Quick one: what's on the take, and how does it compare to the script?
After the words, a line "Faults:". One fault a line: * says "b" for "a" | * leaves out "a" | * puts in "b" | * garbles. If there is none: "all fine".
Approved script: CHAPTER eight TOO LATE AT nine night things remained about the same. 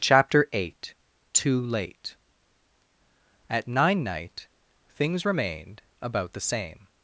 CHAPTER eight TOO LATE AT nine night things remained about the same.
Faults:
all fine